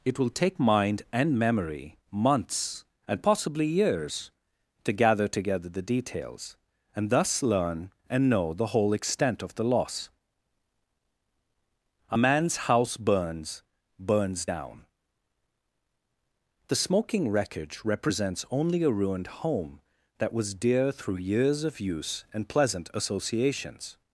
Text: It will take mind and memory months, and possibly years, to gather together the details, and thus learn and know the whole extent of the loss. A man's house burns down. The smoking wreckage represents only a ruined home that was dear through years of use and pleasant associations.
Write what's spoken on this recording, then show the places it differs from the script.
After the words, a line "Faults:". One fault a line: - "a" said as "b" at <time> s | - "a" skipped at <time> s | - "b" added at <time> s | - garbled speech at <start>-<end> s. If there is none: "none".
It will take mind and memory months, and possibly years, to gather together the details, and thus learn and know the whole extent of the loss. A man's house burns burns down. The smoking wreckage represents only a ruined home that was dear through years of use and pleasant associations.
Faults:
- "burns" added at 14.0 s